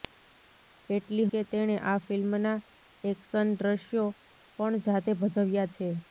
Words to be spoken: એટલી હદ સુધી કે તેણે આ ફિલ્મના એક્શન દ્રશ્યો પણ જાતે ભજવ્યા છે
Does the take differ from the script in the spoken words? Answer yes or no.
yes